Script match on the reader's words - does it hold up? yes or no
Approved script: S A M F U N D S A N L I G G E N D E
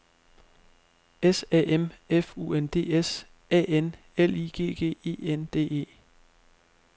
yes